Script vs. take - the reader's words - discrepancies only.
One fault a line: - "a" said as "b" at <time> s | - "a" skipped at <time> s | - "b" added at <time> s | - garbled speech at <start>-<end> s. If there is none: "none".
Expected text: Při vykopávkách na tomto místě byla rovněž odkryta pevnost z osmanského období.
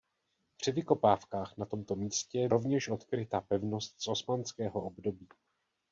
- "byla" skipped at 2.5 s